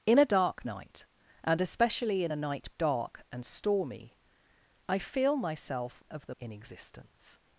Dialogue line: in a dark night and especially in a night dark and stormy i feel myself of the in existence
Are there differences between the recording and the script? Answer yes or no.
no